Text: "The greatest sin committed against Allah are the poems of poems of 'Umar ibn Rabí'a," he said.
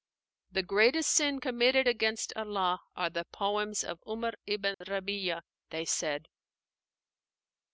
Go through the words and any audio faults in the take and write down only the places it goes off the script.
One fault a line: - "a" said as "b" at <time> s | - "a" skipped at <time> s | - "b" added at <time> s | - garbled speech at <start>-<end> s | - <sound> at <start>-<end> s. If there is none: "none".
- "poems of" skipped at 4.0 s
- dropout at 4.7-4.8 s
- "he" said as "they" at 5.7 s